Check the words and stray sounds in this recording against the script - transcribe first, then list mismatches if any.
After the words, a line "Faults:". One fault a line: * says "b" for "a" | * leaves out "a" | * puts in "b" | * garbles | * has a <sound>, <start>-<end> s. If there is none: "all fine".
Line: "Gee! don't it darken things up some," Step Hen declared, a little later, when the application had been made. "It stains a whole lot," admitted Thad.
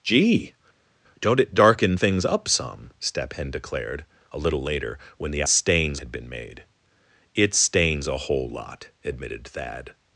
"Gee! don't it darken things up some," Step Hen declared, a little later, when the stains had been made. "It stains a whole lot," admitted Thad.
Faults:
* says "stains" for "application"